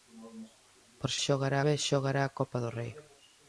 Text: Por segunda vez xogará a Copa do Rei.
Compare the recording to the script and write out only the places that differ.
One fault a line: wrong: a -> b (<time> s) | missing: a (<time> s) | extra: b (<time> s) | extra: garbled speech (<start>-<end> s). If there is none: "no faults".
wrong: segunda -> xogará (1.3 s)